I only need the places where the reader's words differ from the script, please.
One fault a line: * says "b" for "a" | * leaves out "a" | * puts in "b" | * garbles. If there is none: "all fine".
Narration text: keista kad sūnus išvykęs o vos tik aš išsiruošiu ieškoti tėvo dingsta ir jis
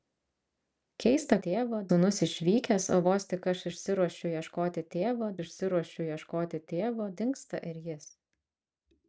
* says "tėvo" for "kad"
* puts in "išsiruošiu ieškoti tėvo"